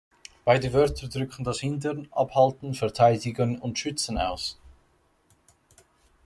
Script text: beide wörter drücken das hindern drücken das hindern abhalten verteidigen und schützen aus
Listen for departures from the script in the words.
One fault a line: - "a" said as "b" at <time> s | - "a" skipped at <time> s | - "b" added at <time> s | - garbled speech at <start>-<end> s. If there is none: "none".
- "drücken das hindern" skipped at 2.1 s